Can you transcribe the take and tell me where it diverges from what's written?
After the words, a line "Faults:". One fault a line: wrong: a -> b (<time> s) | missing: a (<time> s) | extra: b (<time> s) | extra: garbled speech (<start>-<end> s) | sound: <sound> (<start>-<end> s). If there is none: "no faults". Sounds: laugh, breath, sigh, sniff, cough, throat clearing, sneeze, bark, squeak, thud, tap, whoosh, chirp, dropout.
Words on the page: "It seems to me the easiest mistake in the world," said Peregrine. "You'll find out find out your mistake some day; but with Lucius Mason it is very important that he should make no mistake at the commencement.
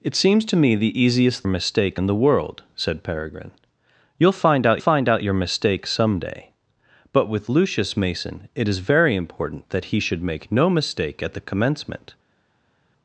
"It seems to me the easiest mistake in the world," said Peregrine. "You'll find out find out your mistake some day; but with Lucius Mason it is very important that he should make no mistake at the commencement.
Faults:
no faults